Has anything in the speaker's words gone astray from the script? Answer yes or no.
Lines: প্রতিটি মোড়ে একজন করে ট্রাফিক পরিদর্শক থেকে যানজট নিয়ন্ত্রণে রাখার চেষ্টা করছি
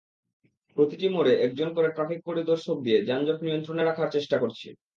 yes